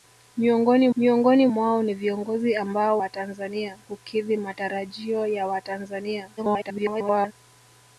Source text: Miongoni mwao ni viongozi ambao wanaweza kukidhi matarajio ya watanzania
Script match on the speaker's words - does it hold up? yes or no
no